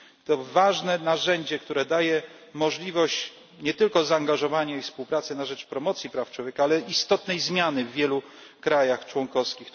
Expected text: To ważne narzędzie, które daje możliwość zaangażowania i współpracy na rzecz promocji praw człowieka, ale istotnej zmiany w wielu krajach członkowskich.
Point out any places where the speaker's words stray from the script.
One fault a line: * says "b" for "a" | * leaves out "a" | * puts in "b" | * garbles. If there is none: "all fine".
* puts in "nie tylko"